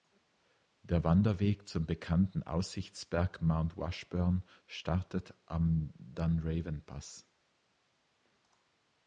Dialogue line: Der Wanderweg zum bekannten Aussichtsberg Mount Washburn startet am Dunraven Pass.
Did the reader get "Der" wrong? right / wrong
right